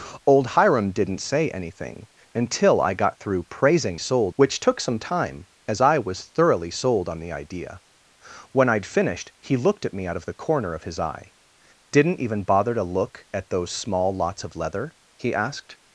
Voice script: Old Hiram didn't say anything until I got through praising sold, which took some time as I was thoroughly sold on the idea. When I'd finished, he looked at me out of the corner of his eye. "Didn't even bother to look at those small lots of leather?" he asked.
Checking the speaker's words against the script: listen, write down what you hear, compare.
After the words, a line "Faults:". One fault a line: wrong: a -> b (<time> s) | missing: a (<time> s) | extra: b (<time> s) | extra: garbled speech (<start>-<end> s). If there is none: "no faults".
Old Hiram didn't say anything until I got through praising sold, which took some time as I was thoroughly sold on the idea. When I'd finished, he looked at me out of the corner of his eye. "Didn't even bother to look at those small lots of leather?" he asked.
Faults:
no faults